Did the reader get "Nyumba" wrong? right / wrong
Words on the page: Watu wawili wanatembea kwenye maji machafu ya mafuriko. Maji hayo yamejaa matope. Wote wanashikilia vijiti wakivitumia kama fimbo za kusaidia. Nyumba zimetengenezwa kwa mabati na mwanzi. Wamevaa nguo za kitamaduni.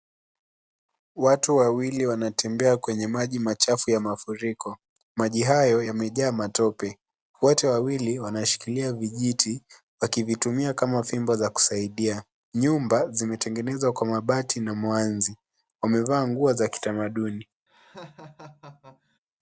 right